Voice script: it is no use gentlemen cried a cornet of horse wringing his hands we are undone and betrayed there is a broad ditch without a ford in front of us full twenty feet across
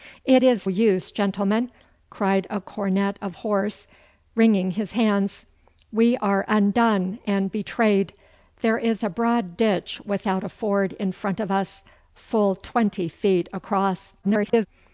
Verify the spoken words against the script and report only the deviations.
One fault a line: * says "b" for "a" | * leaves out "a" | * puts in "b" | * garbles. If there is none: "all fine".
* leaves out "no"
* garbles